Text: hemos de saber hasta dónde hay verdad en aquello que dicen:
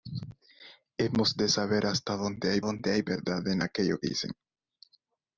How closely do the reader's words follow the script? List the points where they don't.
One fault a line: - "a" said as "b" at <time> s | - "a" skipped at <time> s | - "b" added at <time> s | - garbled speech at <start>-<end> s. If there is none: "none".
- "dónde hay" added at 2.6 s
- "que" skipped at 4.0 s